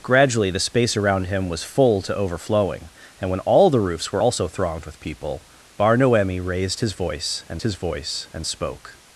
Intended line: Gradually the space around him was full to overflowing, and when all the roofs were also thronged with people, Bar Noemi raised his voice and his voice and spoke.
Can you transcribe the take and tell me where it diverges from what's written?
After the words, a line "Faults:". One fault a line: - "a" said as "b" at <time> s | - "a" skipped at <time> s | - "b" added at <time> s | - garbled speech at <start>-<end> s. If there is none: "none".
Gradually the space around him was full to overflowing, and when all the roofs were also thronged with people, Bar Noemi raised his voice and his voice and spoke.
Faults:
none